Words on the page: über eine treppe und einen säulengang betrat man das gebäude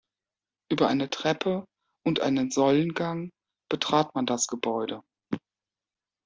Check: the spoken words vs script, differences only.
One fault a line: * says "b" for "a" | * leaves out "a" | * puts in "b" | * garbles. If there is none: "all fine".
all fine